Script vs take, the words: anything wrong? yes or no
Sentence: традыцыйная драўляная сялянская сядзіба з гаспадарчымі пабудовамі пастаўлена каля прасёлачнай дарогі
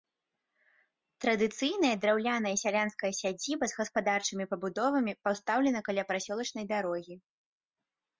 no